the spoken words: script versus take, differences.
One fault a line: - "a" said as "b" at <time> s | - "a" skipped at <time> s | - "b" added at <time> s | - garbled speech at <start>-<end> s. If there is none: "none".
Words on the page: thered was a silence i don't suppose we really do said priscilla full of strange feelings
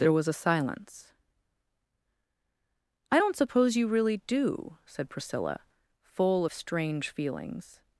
- "thered" said as "there" at 0.0 s
- "we" said as "you" at 3.8 s